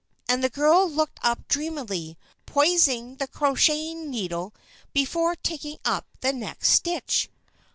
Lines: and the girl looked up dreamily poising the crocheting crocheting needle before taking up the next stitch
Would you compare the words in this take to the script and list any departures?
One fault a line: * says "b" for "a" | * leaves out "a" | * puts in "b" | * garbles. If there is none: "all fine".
* leaves out "crocheting"